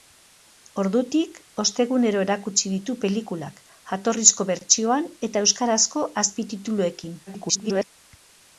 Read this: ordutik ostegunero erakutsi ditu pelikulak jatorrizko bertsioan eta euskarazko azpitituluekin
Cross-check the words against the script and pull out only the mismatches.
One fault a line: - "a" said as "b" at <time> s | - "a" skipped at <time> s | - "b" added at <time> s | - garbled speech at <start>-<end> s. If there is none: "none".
- garbled speech at 7.3-7.9 s